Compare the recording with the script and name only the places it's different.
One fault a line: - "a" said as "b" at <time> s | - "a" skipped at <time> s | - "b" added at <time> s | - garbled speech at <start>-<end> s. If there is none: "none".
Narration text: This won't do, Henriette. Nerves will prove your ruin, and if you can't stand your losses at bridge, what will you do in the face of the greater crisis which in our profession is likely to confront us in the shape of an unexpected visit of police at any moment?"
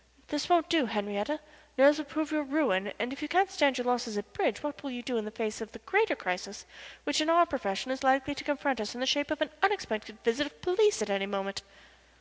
none